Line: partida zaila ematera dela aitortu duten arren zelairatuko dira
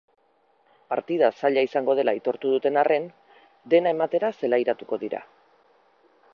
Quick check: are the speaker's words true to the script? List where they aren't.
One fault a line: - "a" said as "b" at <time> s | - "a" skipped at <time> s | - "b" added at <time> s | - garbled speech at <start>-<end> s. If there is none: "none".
- "ematera" said as "izango" at 1.7 s
- "dena ematera" added at 3.8 s